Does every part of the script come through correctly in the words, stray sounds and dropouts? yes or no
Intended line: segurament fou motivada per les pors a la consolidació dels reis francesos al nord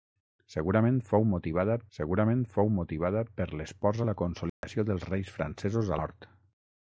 no